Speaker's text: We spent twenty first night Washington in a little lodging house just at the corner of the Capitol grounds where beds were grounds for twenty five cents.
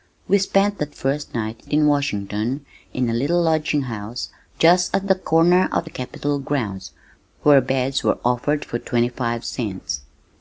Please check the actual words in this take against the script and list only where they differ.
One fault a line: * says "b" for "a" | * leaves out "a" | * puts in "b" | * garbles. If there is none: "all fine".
* says "that" for "twenty"
* puts in "in"
* says "offered" for "grounds"